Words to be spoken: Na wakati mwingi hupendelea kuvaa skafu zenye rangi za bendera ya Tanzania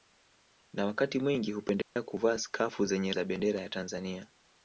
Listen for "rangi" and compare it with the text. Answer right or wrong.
wrong